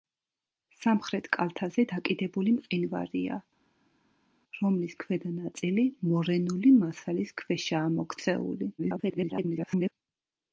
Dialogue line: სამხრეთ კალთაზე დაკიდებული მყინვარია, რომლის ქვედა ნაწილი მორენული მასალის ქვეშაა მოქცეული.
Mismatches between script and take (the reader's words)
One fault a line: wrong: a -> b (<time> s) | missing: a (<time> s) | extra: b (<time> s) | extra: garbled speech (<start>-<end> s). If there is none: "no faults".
extra: garbled speech (8.8-9.9 s)